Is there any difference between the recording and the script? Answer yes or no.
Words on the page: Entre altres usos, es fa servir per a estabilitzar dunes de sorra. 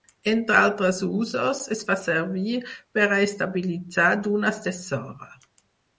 no